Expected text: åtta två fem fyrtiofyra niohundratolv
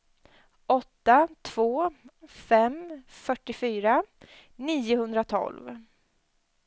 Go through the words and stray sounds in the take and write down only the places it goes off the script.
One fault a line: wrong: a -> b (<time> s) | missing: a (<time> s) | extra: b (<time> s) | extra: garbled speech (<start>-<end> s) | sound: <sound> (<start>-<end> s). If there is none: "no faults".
no faults